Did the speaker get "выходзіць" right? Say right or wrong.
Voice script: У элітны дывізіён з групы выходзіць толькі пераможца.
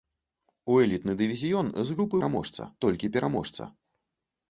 wrong